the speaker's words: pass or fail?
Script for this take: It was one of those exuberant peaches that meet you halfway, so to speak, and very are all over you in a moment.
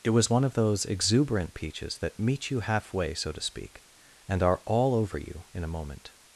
fail